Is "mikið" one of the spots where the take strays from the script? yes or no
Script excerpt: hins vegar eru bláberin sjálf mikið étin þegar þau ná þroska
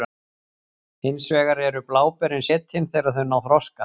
yes